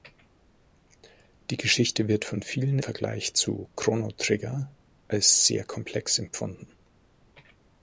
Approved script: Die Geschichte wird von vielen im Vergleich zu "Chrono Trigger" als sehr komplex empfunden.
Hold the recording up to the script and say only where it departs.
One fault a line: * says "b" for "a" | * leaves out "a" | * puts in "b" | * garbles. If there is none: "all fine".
* leaves out "im"